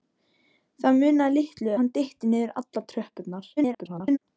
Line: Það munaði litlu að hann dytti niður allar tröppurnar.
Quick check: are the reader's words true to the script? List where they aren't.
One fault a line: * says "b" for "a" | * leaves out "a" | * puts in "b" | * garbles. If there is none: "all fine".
* leaves out "að"
* garbles